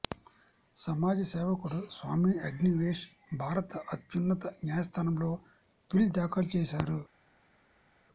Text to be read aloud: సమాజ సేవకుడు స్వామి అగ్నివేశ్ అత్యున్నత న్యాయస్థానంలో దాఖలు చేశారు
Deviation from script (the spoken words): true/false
true